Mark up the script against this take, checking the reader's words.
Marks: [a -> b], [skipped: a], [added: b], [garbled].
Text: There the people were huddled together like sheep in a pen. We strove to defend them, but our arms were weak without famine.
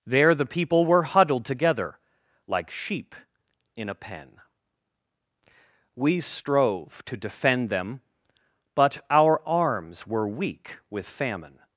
There the people were huddled together like sheep in a pen. We strove to defend them, but our arms were weak [without -> with] famine.